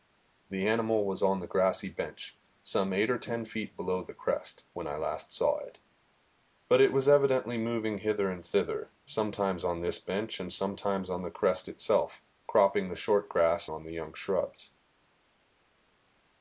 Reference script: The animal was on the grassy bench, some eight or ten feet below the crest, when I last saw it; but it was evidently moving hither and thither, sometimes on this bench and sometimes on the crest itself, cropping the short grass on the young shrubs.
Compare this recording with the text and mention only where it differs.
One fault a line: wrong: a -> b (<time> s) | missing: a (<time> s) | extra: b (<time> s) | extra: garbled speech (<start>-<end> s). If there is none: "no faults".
no faults